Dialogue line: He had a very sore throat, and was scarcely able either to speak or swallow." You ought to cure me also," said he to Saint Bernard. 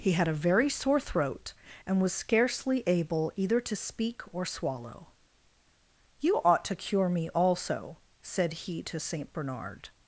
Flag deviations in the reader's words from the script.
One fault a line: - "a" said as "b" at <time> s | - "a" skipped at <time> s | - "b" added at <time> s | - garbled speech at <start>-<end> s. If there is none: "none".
none